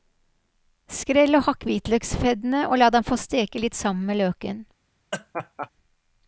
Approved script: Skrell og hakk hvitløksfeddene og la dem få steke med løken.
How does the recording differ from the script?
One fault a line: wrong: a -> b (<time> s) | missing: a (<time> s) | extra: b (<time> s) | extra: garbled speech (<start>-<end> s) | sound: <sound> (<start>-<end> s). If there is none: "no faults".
extra: litt sammen (3.6 s)
sound: laugh (5.1-5.7 s)